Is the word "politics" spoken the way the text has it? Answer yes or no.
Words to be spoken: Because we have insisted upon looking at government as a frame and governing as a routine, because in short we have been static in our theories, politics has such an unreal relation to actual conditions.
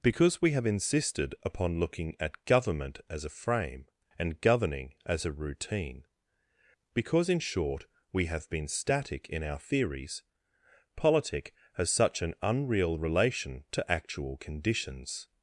no